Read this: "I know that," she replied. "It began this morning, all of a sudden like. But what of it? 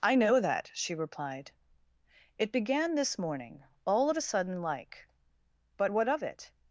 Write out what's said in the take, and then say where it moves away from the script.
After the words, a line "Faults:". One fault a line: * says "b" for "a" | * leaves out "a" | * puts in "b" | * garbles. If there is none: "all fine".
"I know that," she replied. "It began this morning, all of a sudden like. But what of it?
Faults:
all fine